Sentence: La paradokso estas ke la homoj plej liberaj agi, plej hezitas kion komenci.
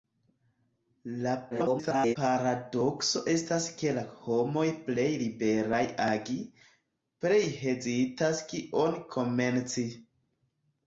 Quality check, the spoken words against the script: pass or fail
fail